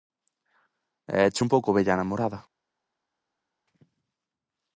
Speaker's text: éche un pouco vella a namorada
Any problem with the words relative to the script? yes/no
no